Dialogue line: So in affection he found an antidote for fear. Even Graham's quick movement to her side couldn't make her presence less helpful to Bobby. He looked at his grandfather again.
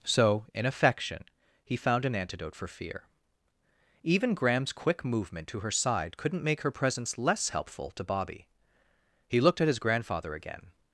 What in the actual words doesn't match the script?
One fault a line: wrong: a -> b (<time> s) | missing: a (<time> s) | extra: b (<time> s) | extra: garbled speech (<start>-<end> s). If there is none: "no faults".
no faults